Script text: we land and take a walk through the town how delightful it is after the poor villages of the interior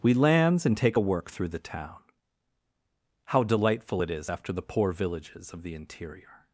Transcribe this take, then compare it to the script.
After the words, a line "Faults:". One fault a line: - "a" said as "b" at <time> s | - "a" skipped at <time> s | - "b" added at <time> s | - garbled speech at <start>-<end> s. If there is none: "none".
we lands and take a work through the town how delightful it is after the poor villages of the interior
Faults:
- "land" said as "lands" at 0.1 s
- "walk" said as "work" at 1.0 s